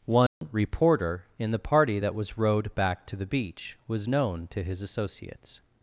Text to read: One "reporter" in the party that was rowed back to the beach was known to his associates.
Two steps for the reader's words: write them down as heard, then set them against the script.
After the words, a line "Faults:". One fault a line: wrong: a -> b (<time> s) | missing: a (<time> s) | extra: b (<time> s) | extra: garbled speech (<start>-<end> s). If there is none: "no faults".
One "reporter" in the party that was rowed back to the beach was known to his associates.
Faults:
no faults